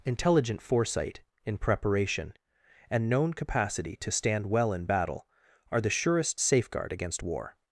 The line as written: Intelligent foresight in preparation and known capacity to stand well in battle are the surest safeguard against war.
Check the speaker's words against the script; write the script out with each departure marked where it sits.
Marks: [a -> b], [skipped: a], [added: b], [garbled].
Intelligent foresight in preparation and known capacity to stand well in battle are the surest safeguard against war.